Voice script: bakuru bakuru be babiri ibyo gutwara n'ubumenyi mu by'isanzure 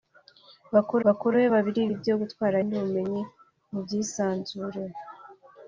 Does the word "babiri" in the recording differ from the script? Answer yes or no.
no